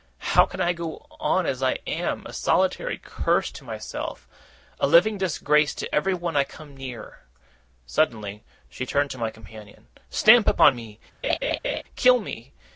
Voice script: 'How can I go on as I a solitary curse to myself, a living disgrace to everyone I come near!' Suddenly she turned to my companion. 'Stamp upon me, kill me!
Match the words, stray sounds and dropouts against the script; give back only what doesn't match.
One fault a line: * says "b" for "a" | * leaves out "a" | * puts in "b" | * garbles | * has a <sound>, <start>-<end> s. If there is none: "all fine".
* puts in "am"
* has a laugh, 11.2-11.8 s